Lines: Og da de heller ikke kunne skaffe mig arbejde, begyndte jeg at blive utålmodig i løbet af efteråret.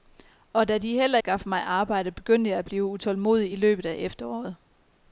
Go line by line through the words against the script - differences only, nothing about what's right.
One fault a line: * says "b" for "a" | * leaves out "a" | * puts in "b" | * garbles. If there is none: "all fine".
* leaves out "ikke kunne"